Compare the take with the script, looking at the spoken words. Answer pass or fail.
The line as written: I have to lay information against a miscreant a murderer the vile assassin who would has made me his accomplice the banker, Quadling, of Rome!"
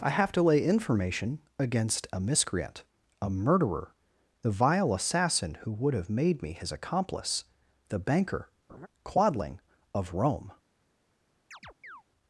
fail